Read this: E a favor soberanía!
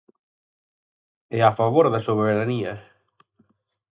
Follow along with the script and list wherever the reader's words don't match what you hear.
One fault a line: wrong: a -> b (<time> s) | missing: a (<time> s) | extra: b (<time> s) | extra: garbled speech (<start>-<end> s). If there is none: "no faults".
extra: da (1.9 s)